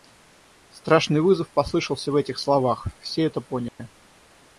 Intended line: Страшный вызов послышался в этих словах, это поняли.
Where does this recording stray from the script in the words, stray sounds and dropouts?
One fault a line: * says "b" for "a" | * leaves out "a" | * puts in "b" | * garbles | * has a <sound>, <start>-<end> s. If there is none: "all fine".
* puts in "все"
* has a dropout, 3.7-3.8 s